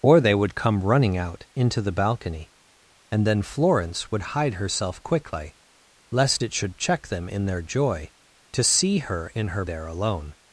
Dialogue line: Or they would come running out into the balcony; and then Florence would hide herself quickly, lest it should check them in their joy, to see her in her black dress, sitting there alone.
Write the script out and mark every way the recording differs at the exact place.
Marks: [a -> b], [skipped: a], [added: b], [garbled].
Or they would come running out into the balcony; and then Florence would hide herself quickly, lest it should check them in their joy, to see her in her [skipped: black dress, sitting] there alone.